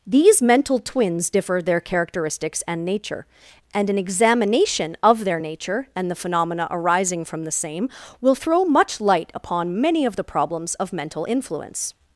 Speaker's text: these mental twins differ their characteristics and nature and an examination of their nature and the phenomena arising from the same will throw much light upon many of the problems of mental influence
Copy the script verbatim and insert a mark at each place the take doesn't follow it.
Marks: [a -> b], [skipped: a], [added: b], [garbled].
these mental twins differ their characteristics and nature and an examination of their nature and the phenomena arising from the same will throw much light upon many of the problems of mental influence